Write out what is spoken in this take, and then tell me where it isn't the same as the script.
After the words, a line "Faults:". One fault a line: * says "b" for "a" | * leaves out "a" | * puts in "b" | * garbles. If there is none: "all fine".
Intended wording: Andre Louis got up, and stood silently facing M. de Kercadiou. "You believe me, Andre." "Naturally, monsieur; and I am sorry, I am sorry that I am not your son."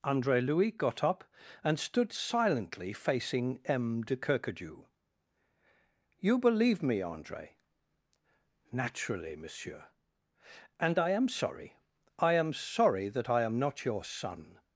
Andre Louis got up, and stood silently facing M. de Kercadiou. "You believe me, Andre." "Naturally, monsieur; and I am sorry, I am sorry that I am not your son."
Faults:
all fine